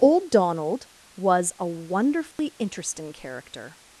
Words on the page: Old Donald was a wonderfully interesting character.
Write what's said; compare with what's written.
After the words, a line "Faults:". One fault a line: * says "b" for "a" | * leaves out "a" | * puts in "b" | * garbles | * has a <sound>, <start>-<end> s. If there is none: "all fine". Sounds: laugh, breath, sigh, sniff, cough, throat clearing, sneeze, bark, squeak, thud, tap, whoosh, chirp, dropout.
Old Donald was a wonderfully interesting character.
Faults:
* has a dropout, 2.3-2.4 s